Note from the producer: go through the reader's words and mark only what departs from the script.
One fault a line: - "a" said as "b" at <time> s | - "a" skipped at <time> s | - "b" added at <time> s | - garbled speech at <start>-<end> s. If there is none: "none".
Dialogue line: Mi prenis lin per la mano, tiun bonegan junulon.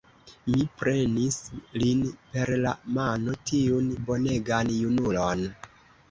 none